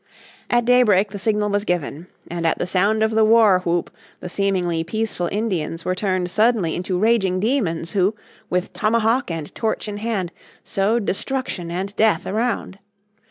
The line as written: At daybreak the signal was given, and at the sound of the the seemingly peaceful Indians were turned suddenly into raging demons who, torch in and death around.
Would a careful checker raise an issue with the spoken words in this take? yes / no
yes